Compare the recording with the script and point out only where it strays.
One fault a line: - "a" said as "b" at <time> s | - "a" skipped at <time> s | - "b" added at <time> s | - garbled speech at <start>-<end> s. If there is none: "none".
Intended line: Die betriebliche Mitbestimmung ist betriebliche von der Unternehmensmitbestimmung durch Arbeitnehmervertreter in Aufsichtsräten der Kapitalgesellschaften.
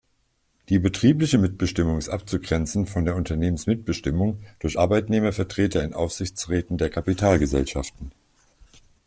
- "betriebliche" said as "abzugrenzen" at 2.1 s